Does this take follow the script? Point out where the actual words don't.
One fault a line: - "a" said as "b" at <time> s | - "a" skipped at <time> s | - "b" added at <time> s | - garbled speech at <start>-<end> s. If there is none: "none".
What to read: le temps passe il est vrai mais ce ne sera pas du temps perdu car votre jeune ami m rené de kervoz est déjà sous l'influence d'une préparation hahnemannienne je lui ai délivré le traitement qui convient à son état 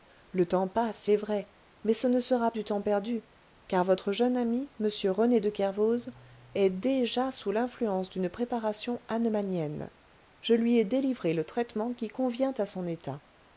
- "il" skipped at 1.1 s
- "pas" skipped at 2.5 s